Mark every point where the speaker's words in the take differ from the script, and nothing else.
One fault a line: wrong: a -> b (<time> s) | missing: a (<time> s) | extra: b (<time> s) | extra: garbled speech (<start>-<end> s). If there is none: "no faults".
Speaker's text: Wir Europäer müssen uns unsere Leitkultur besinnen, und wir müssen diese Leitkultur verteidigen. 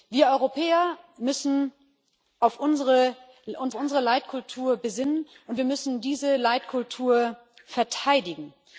no faults